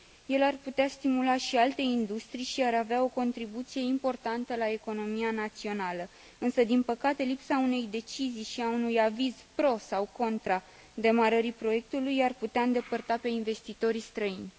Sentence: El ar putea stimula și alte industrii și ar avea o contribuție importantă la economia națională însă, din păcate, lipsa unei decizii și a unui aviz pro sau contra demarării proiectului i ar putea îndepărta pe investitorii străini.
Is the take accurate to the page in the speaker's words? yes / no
yes